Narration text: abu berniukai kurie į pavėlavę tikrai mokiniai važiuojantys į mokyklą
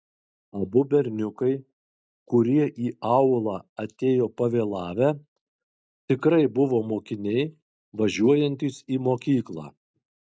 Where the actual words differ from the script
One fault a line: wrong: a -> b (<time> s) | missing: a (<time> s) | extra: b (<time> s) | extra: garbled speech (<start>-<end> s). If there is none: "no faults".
extra: aulą atėjo (3.1 s)
extra: buvo (6.6 s)